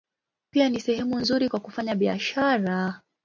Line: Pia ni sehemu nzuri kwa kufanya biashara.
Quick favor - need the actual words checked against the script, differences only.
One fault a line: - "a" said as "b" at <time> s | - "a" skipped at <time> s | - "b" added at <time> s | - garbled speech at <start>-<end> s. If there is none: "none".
none